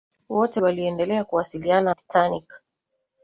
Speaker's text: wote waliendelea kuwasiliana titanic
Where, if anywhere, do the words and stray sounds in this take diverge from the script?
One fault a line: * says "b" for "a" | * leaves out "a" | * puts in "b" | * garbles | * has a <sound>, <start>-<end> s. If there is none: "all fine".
all fine